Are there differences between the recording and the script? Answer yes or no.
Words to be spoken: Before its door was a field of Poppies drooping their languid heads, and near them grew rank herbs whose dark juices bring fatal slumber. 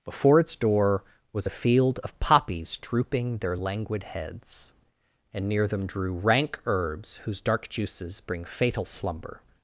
yes